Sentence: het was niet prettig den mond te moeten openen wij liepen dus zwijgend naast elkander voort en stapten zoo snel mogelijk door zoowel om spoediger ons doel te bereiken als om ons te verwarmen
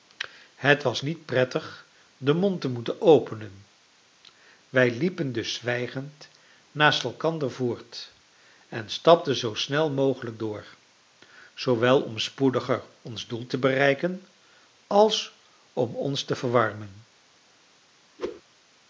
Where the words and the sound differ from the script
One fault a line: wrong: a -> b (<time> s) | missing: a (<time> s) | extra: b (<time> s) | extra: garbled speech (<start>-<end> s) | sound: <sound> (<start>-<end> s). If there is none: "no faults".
sound: whoosh (18.2-18.4 s)